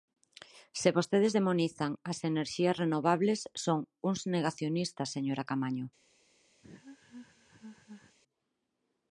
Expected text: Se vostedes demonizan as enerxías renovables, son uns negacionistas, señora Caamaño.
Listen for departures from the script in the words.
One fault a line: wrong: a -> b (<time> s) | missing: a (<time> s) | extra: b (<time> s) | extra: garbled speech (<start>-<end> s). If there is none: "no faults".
no faults